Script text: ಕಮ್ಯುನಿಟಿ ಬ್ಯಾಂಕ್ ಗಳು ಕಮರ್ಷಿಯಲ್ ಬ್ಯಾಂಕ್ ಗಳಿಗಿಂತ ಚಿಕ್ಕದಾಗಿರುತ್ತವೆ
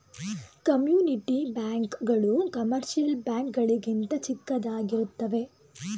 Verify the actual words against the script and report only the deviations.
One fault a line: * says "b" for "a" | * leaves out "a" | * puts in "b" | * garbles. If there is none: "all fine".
all fine